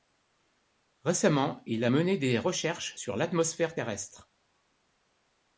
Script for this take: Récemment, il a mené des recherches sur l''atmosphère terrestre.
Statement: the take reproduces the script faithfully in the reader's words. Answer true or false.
true